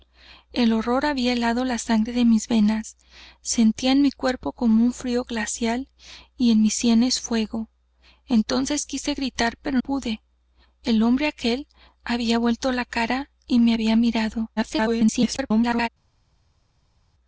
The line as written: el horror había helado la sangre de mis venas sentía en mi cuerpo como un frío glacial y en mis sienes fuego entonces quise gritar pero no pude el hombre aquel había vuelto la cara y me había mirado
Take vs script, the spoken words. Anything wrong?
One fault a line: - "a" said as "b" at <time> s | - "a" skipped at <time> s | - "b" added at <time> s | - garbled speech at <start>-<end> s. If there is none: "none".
- "no" skipped at 9.8 s
- garbled speech at 14.6-15.9 s